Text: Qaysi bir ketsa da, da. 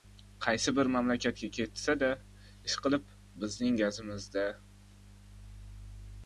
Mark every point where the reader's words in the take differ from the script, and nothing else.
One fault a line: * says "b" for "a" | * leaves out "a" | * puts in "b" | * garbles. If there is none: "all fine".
* puts in "mamlakatga"
* puts in "ishqilib bizning gazimiz"